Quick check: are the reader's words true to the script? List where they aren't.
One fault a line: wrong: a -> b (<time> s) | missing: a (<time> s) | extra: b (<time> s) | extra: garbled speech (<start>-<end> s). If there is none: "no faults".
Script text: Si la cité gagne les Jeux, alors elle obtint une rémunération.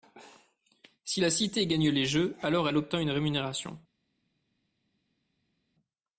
no faults